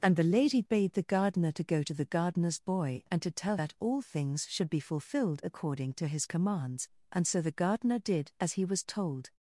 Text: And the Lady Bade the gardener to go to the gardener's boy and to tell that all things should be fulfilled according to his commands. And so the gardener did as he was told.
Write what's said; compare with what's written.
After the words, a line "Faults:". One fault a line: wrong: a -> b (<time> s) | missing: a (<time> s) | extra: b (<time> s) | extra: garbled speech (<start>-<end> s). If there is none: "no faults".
And the Lady Bade the gardener to go to the gardener's boy and to tell that all things should be fulfilled according to his commands. And so the gardener did as he was told.
Faults:
no faults